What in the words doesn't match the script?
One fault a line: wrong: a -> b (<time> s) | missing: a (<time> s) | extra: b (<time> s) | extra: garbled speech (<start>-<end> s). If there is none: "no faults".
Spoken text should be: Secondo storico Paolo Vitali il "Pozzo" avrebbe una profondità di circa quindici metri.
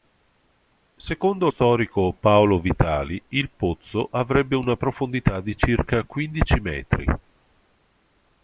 no faults